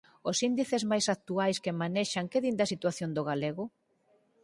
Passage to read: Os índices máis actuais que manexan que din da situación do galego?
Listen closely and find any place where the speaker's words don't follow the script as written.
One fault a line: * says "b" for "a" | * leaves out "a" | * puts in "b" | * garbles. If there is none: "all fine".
all fine